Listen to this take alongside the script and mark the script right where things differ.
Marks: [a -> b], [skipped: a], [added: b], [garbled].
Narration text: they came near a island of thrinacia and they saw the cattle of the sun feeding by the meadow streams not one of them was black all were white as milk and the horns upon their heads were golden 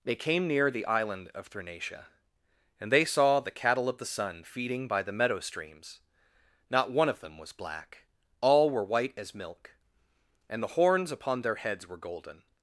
they came near [a -> the] island of thrinacia and they saw the cattle of the sun feeding by the meadow streams not one of them was black all were white as milk and the horns upon their heads were golden